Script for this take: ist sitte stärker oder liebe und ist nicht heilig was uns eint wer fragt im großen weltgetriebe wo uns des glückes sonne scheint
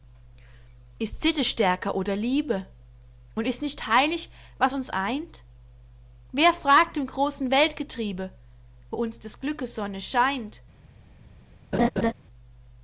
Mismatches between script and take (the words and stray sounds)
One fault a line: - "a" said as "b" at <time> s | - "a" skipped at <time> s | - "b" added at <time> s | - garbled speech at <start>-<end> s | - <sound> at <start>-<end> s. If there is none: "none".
- laugh at 11.7-12.1 s